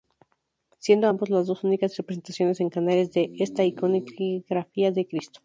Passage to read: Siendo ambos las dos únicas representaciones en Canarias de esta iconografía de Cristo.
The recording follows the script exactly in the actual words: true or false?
true